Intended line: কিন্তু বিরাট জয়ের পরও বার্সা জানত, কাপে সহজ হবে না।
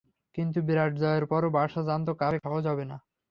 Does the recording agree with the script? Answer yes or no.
yes